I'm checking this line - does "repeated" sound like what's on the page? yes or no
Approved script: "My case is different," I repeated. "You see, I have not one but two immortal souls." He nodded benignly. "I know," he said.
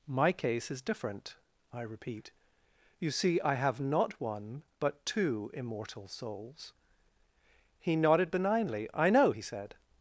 no